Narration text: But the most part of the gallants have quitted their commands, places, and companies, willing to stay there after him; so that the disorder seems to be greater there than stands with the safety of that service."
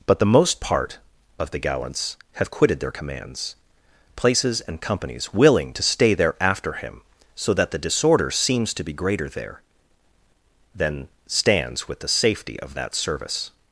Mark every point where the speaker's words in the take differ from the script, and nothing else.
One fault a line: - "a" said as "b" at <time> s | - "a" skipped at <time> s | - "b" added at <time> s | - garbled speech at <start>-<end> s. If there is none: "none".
none